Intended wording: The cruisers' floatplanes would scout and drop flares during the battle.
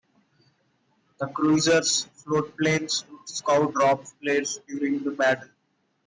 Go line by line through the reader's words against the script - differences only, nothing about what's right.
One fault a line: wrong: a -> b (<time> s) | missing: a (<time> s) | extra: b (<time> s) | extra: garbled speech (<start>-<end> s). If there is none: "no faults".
missing: and (3.8 s)